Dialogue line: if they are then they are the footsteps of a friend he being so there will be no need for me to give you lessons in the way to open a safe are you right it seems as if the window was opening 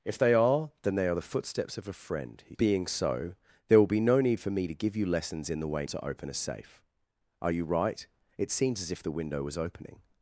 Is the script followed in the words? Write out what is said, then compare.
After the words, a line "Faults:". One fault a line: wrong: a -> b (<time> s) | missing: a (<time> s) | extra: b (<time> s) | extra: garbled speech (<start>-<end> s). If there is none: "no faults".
if they are then they are the footsteps of a friend he being so there will be no need for me to give you lessons in the way to open a safe are you right it seems as if the window was opening
Faults:
no faults